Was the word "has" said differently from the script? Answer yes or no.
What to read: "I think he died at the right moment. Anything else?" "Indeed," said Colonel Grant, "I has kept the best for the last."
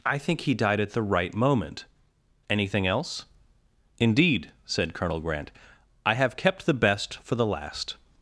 yes